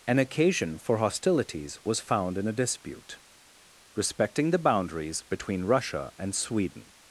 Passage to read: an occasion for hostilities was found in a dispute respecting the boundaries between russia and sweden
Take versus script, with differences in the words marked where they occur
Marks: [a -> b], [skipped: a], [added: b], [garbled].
an occasion for hostilities was found in a dispute respecting the boundaries between russia and sweden